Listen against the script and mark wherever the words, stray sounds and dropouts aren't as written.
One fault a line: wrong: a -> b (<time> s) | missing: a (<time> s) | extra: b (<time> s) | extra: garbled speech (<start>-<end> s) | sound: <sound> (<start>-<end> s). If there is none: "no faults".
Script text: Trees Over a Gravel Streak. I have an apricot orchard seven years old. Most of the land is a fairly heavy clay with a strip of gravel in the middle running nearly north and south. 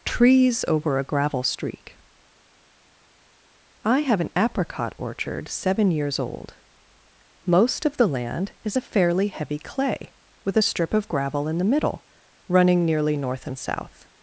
no faults